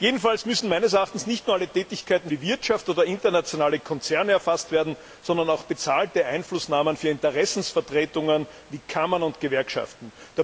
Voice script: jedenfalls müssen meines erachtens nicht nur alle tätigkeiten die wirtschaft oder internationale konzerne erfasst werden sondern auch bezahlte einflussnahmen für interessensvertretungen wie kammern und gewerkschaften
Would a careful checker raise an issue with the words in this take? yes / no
no